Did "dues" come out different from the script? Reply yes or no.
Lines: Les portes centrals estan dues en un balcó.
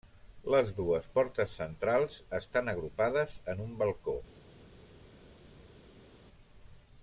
yes